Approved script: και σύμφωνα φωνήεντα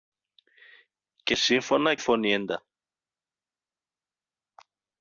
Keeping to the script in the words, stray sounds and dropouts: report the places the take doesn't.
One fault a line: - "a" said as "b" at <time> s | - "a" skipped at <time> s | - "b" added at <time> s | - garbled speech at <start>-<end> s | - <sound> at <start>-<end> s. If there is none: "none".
none